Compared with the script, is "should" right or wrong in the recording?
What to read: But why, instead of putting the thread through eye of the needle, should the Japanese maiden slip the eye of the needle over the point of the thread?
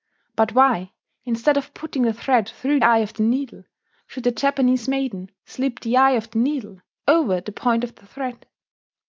right